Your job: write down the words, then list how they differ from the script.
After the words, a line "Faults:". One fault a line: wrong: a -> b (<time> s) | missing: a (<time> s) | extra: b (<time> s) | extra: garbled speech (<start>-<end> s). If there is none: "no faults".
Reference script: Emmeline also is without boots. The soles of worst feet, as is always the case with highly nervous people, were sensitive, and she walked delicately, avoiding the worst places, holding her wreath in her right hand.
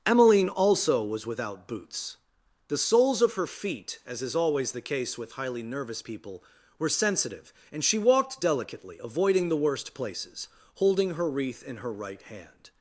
Emmeline also was without boots. The soles of her feet, as is always the case with highly nervous people, were sensitive, and she walked delicately, avoiding the worst places, holding her wreath in her right hand.
Faults:
wrong: is -> was (1.0 s)
wrong: worst -> her (3.4 s)